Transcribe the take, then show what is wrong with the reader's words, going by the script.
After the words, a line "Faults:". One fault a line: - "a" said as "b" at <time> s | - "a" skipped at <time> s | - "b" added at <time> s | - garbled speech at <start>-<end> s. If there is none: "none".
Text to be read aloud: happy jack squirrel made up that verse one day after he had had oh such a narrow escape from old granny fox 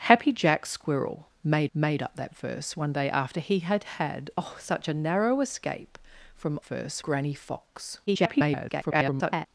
happy jack squirrel made made up that verse one day after he had had oh such a narrow escape from verse granny fox [garbled]
Faults:
- "made" added at 1.7 s
- "old" said as "verse" at 6.6 s
- garbled speech at 8.1-9.5 s